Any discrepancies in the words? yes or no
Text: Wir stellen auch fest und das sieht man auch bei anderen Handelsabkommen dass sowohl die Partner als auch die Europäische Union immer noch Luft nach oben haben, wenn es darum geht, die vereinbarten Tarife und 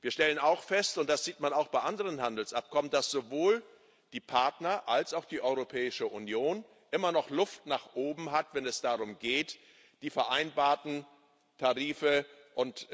no